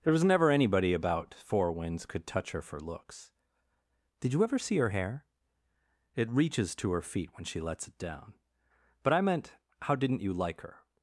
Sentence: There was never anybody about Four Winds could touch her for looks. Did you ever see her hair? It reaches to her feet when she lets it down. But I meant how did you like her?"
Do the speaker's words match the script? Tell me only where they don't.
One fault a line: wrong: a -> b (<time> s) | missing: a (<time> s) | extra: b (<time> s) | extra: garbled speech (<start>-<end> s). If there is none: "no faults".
wrong: did -> didn't (10.0 s)